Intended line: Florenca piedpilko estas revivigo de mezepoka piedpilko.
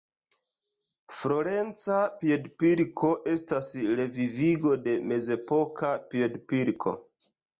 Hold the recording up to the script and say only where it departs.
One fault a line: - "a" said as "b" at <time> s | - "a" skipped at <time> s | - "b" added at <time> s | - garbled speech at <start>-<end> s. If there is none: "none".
none